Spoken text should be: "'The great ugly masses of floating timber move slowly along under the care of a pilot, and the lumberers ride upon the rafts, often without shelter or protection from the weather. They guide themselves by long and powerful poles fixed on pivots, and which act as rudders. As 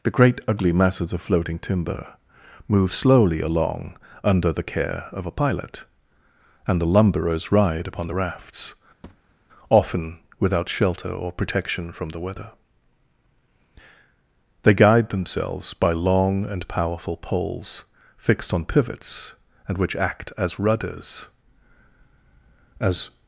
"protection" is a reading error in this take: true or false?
false